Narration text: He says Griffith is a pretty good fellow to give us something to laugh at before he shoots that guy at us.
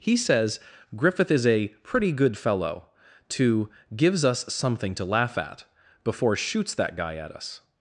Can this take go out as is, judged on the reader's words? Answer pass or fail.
fail